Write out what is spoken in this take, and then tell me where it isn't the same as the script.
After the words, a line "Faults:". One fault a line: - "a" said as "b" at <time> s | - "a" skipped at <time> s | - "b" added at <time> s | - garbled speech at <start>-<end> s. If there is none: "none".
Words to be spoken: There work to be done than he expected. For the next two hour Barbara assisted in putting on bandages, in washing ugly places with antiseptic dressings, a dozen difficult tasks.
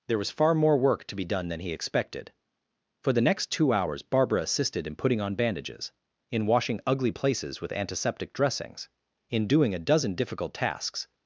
There was far more work to be done than he expected. For the next two hours Barbara assisted in putting on bandages, in washing ugly places with antiseptic dressings, in doing a dozen difficult tasks.
Faults:
- "was far more" added at 0.2 s
- "hour" said as "hours" at 3.7 s
- "in doing" added at 9.3 s